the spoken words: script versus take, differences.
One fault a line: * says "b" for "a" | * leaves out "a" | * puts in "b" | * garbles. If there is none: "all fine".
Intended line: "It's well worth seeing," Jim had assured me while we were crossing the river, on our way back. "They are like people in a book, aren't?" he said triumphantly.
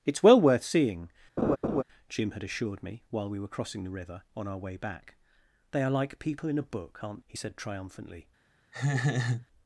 all fine